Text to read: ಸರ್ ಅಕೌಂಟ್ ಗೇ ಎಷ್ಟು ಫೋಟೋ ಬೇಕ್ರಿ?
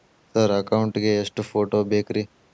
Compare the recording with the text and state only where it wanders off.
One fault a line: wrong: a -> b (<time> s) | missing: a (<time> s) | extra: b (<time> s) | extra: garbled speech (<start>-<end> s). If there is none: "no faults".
no faults